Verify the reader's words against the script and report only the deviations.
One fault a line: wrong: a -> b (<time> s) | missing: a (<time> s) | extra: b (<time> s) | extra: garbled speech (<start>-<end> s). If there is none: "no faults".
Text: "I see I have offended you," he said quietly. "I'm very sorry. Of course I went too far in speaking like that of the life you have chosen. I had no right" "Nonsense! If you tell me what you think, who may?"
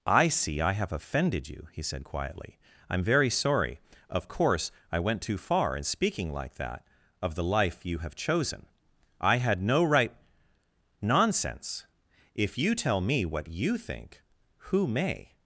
no faults